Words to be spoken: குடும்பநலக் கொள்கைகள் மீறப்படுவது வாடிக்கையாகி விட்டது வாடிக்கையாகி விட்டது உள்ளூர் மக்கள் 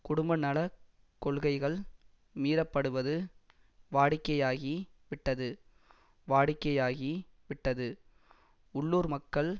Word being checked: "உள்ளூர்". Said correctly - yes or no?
yes